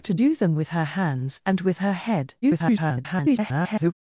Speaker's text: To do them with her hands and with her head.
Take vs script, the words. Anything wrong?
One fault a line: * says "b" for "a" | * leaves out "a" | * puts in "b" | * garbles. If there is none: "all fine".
* garbles